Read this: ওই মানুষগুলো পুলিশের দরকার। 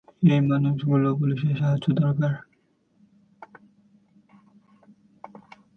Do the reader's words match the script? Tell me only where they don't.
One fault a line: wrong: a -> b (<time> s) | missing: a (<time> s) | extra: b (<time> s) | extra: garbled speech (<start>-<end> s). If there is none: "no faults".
wrong: ওই -> এই (0.2 s)
extra: সাহায্য (1.6 s)